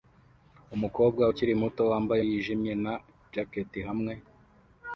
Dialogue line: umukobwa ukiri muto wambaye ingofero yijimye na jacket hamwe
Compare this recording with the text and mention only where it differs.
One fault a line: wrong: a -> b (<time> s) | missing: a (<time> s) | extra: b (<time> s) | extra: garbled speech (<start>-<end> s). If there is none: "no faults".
missing: ingofero (2.2 s)